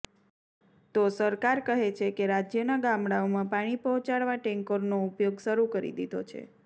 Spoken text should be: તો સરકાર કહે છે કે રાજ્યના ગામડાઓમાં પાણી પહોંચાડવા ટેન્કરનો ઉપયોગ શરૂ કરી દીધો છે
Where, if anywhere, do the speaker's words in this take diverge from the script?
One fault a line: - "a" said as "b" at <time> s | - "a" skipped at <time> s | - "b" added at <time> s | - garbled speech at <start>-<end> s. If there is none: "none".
none